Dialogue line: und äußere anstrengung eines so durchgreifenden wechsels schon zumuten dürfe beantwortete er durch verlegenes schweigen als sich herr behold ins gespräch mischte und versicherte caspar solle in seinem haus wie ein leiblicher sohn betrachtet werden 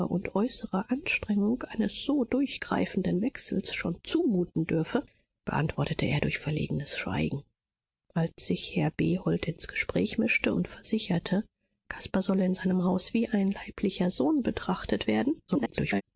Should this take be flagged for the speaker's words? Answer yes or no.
yes